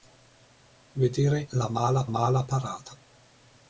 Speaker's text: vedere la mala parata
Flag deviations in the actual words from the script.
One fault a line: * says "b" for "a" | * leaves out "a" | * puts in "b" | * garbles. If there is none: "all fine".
* puts in "mala"